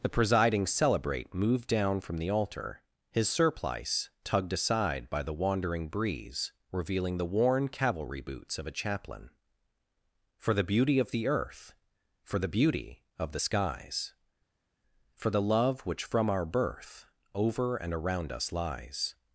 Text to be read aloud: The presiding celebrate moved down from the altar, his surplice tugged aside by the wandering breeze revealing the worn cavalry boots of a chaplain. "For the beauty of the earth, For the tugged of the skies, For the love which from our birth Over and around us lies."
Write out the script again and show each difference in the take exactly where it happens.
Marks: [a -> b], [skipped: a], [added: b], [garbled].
The presiding celebrate moved down from the altar, his surplice tugged aside by the wandering breeze revealing the worn cavalry boots of a chaplain. "For the beauty of the earth, For the [tugged -> beauty] of the skies, For the love which from our birth Over and around us lies."